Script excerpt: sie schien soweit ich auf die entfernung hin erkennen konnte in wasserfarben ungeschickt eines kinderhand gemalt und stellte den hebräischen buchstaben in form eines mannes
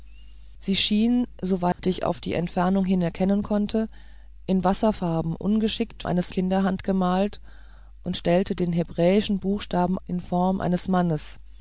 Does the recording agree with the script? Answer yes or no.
yes